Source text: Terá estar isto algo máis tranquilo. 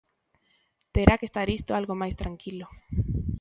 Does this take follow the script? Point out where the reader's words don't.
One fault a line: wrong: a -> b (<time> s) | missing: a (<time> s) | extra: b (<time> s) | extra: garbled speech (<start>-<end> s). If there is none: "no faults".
extra: que (1.2 s)